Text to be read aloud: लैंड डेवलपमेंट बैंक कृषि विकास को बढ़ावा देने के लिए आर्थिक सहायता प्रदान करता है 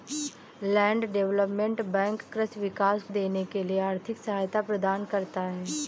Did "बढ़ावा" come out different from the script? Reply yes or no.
yes